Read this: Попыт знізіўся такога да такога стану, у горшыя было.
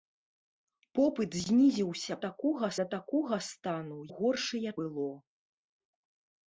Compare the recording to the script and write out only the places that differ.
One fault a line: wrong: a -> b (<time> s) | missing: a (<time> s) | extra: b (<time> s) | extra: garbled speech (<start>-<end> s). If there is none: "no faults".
no faults